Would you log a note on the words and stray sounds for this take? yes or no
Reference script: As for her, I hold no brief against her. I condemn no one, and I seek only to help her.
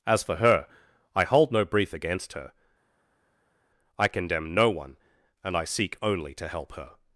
no